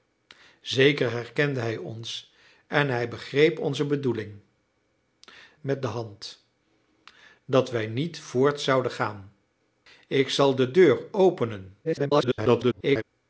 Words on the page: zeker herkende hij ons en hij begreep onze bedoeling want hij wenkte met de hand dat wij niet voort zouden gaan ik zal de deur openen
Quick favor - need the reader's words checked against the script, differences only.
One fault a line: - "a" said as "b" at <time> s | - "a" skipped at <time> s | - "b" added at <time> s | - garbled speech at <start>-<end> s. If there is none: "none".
- "want hij wenkte" skipped at 4.4 s
- garbled speech at 11.8-13.0 s